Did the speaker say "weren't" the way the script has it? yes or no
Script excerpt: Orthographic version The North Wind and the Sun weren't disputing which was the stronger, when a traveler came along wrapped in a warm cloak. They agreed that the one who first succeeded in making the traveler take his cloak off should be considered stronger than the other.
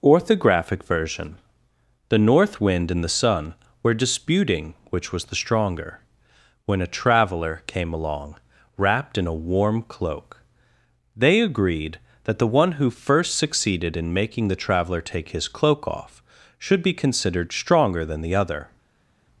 no